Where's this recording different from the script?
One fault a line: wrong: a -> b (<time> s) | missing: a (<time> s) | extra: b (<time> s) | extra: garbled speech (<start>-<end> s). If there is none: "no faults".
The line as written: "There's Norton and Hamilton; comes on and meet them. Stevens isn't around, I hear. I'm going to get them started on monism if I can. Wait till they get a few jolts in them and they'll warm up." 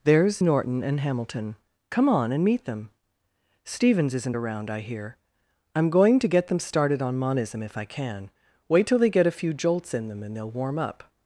wrong: comes -> come (1.9 s)